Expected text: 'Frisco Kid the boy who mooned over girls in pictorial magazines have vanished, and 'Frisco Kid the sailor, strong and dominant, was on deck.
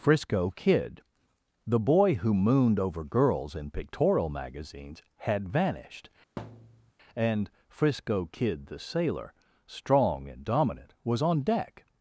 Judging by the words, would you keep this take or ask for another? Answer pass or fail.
fail